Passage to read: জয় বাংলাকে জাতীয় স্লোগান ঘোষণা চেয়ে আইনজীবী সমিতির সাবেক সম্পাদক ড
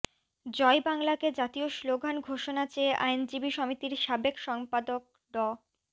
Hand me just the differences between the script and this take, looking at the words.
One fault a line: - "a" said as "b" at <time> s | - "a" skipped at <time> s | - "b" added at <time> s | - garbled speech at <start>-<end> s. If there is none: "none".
none